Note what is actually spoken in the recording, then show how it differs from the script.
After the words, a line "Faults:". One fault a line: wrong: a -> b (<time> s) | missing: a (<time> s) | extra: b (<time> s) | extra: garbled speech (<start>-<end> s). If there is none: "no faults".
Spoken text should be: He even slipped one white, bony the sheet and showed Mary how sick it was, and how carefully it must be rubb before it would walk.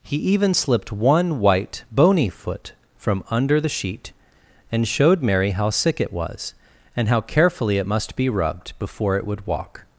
He even slipped one white, bony foot from under the sheet and showed Mary how sick it was, and how carefully it must be rubbed before it would walk.
Faults:
extra: foot from under (2.3 s)
wrong: rubb -> rubbed (8.3 s)